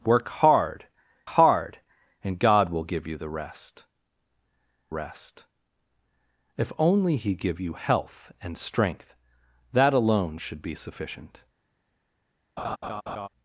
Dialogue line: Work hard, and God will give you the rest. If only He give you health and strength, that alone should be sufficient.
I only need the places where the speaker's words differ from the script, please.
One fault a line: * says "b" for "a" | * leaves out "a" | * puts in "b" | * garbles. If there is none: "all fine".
* puts in "hard"
* puts in "rest"